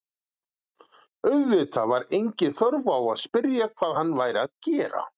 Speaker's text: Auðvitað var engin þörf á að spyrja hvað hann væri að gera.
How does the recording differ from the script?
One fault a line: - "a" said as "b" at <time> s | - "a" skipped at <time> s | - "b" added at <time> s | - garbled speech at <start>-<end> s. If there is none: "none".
none